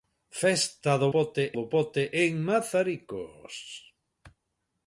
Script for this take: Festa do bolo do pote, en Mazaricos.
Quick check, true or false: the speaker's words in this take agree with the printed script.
false